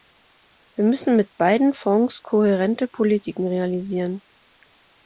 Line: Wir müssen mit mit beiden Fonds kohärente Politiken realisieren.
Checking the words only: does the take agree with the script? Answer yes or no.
no